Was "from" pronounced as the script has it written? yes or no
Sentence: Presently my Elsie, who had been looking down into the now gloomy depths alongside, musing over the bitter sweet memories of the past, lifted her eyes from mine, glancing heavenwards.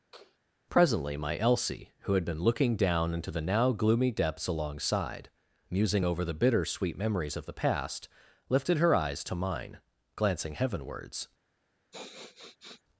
no